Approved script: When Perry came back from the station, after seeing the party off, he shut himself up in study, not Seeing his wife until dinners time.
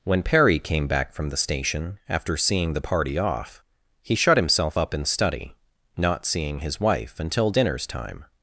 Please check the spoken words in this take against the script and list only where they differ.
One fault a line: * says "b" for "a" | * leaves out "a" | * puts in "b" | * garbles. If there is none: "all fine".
all fine